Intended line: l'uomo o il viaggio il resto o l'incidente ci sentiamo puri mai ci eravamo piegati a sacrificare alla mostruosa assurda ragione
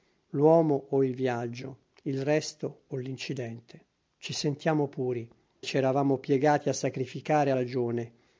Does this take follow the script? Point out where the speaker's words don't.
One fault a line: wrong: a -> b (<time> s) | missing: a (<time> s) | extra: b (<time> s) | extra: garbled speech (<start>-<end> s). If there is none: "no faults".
missing: mai (5.3 s)
missing: alla mostruosa assurda (7.5 s)